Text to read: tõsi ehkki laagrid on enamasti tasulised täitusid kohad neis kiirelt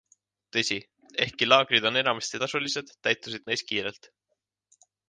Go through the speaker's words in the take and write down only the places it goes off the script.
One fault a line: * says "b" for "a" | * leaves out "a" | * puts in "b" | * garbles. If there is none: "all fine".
* leaves out "kohad"